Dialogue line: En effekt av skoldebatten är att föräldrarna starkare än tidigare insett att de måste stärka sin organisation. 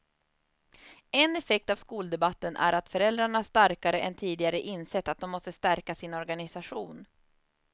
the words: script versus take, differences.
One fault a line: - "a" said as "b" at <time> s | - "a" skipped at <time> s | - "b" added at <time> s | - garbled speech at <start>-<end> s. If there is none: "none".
none